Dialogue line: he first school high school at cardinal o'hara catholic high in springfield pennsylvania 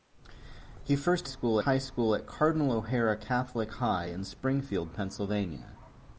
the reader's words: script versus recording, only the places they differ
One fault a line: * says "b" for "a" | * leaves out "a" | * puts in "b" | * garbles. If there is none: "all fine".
all fine